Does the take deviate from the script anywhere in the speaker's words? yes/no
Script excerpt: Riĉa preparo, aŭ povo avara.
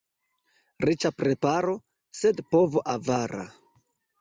yes